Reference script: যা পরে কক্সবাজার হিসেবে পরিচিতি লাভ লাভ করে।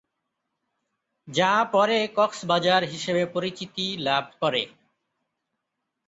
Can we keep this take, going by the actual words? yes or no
no